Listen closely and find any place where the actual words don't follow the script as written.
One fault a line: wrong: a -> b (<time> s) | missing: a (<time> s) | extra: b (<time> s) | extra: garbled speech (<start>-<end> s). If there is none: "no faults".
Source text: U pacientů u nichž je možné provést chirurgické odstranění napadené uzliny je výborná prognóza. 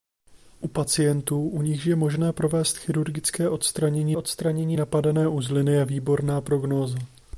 extra: odstranění (4.1 s)